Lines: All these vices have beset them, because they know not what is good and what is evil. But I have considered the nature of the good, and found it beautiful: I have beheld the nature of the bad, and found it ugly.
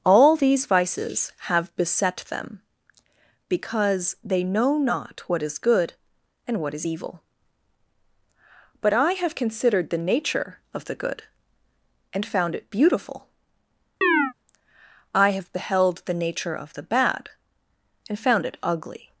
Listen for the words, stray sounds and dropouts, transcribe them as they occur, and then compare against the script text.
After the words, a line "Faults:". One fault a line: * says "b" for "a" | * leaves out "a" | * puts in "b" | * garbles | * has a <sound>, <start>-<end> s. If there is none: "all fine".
All these vices have beset them, because they know not what is good and what is evil. But I have considered the nature of the good, and found it beautiful: I have beheld the nature of the bad, and found it ugly.
Faults:
* has a chirp, 14.0-14.3 s